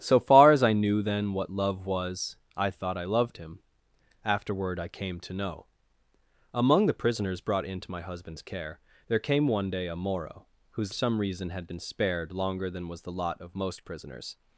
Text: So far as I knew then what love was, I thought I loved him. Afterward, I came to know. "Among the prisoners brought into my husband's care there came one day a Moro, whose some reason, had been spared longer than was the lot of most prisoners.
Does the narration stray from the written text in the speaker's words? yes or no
no